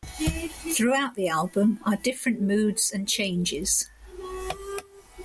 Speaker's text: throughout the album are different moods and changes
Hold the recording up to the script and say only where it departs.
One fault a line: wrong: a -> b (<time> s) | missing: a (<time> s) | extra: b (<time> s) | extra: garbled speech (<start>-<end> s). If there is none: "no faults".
no faults